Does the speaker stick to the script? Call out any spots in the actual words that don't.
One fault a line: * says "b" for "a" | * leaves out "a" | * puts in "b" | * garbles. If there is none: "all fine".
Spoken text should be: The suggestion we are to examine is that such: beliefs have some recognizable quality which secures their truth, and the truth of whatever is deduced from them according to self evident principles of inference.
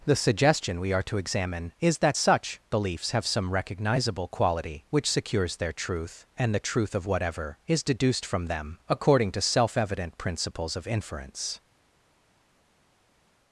all fine